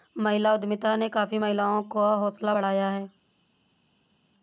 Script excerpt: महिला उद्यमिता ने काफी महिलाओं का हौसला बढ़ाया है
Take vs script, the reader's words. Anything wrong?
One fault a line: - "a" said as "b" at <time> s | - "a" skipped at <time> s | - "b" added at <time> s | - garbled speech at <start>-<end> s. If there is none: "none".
none